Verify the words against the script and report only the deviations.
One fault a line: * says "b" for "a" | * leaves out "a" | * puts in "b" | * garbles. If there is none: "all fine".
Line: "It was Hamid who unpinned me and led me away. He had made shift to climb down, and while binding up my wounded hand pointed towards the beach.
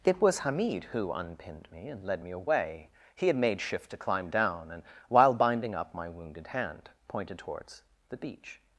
all fine